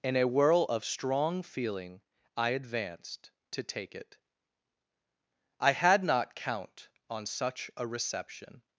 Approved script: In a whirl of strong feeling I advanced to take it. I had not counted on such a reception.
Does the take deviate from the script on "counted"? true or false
true